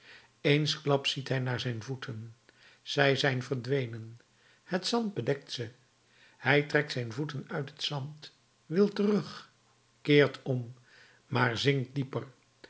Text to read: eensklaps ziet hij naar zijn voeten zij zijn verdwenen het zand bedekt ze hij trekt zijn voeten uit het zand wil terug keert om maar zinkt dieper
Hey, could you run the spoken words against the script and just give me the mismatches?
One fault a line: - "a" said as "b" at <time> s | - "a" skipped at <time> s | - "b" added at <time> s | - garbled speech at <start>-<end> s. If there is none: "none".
none